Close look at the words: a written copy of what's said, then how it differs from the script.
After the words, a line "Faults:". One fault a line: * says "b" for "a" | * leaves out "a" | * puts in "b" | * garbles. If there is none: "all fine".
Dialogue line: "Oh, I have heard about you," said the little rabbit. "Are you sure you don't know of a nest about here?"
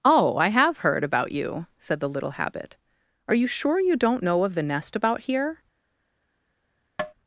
"Oh, I have heard about you," said the little habit. "Are you sure you don't know of the nest about here?"
Faults:
* says "habit" for "rabbit"
* says "the" for "a"